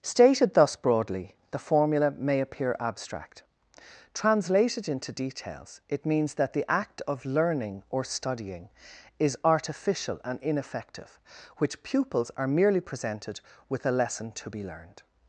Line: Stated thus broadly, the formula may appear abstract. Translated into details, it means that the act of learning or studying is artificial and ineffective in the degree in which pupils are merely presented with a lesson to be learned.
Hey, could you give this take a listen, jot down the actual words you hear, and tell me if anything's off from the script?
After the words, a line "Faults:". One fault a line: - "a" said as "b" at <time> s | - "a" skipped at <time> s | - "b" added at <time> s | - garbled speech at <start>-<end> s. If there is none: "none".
Stated thus broadly, the formula may appear abstract. Translated into details, it means that the act of learning or studying is artificial and ineffective which pupils are merely presented with a lesson to be learned.
Faults:
- "in the degree in" skipped at 11.2 s